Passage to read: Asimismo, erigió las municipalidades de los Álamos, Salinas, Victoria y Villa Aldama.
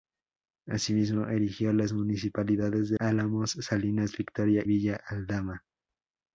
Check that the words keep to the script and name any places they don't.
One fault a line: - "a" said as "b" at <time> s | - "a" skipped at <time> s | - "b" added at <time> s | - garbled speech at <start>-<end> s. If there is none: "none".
- "los" skipped at 3.0 s
- "y" skipped at 4.7 s